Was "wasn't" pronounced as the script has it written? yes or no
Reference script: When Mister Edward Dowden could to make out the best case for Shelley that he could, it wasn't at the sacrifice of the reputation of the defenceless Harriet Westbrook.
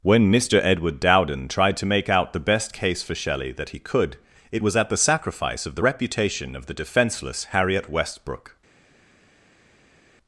no